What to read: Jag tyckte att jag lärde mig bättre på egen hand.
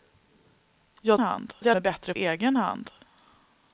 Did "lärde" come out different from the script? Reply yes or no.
yes